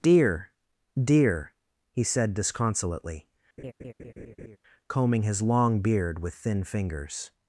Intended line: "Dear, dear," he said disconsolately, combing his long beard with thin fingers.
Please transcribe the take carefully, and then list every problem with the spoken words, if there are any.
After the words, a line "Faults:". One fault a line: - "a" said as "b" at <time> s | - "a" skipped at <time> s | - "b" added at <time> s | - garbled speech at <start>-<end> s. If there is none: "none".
"Dear, dear," he said disconsolately, combing his long beard with thin fingers.
Faults:
none